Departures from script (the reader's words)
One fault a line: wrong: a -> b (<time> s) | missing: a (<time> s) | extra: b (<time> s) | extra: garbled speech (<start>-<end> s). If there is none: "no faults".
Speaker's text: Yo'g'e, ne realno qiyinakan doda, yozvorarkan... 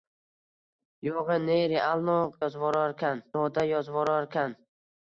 wrong: qiyinakan -> yozvorarkan (2.4 s)